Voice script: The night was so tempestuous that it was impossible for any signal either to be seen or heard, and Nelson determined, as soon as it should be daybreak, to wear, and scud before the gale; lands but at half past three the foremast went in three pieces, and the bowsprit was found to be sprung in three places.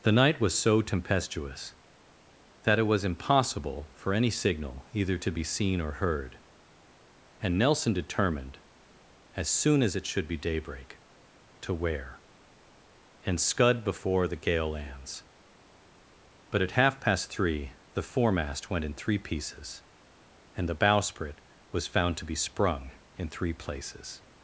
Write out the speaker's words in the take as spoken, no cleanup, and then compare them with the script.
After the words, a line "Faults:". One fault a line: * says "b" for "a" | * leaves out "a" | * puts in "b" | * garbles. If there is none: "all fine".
The night was so tempestuous that it was impossible for any signal either to be seen or heard, and Nelson determined, as soon as it should be daybreak, to wear, and scud before the gale; lands but at half past three the foremast went in three pieces, and the bowsprit was found to be sprung in three places.
Faults:
all fine